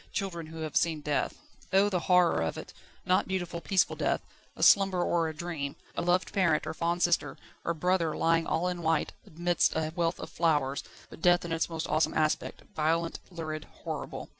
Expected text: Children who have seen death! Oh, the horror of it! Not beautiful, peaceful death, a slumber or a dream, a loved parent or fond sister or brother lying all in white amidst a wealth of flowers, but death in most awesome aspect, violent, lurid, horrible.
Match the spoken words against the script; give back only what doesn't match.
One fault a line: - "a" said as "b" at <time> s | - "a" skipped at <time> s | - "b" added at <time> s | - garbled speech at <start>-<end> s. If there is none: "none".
- "its" added at 11.5 s